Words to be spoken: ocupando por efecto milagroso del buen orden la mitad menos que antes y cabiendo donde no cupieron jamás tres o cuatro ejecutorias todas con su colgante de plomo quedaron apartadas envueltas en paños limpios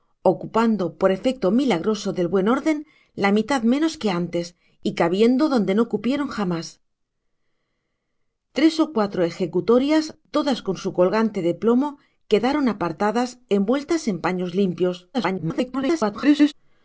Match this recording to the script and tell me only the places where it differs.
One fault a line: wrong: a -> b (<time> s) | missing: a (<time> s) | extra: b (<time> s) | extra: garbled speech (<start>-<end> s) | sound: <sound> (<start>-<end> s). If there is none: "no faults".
extra: garbled speech (15.1-16.5 s)